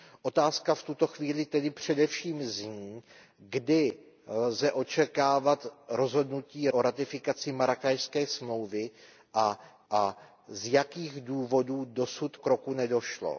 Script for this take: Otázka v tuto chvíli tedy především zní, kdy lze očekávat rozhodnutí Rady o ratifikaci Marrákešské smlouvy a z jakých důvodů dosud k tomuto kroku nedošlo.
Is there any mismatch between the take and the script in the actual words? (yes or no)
yes